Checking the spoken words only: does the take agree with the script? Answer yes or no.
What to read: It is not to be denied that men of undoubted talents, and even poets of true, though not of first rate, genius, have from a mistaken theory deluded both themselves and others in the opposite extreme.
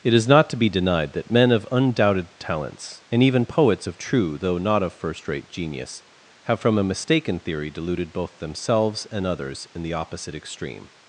yes